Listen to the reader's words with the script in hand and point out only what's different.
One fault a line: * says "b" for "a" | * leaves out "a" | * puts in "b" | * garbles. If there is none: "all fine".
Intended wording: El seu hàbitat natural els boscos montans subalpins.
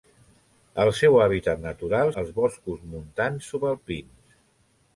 all fine